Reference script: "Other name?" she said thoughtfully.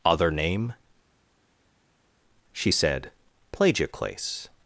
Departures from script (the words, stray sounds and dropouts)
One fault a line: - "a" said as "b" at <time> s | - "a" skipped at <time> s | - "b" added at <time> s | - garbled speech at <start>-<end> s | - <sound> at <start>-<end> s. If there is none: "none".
- "thoughtfully" said as "plagioclase" at 3.5 s